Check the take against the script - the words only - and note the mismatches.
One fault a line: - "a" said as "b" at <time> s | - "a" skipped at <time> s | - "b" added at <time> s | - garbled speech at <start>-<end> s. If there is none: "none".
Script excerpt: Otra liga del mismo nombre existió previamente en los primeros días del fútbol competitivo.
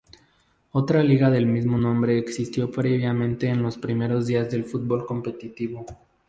none